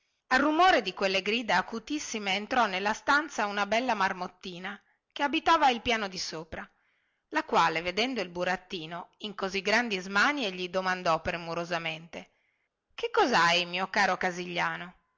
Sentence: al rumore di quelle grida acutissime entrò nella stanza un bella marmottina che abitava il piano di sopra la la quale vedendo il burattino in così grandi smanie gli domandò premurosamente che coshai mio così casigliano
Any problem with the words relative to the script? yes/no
yes